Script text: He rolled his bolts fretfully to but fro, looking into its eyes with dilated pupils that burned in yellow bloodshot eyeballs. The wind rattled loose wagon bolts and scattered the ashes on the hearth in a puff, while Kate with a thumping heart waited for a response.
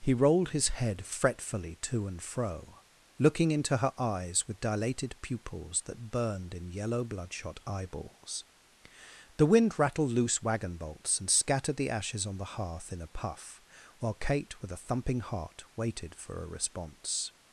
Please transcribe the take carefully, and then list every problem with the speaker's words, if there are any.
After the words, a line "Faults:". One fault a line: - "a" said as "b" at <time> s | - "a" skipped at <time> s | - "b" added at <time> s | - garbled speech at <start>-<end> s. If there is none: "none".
He rolled his head fretfully to and fro, looking into her eyes with dilated pupils that burned in yellow bloodshot eyeballs. The wind rattled loose wagon bolts and scattered the ashes on the hearth in a puff, while Kate with a thumping heart waited for a response.
Faults:
- "bolts" said as "head" at 0.7 s
- "but" said as "and" at 2.1 s
- "its" said as "her" at 3.8 s